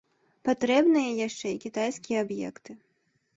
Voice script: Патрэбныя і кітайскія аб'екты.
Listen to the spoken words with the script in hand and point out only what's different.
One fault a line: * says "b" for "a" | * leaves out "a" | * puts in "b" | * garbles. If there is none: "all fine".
* puts in "яшчэ"